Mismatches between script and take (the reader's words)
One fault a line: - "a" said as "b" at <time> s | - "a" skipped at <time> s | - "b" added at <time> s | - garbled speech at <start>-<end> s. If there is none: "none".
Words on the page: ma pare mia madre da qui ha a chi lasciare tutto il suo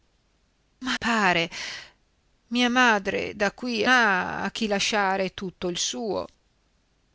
none